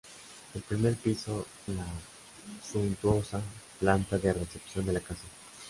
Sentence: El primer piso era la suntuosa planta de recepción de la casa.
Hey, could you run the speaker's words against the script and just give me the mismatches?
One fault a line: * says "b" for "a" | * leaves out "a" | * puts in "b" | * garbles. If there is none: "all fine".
* leaves out "era"